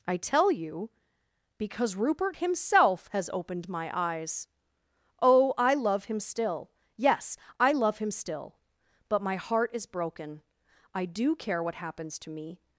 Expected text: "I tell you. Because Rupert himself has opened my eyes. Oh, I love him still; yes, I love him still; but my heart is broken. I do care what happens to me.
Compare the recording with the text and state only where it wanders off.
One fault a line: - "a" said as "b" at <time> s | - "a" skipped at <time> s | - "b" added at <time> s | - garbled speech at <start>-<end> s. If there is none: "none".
none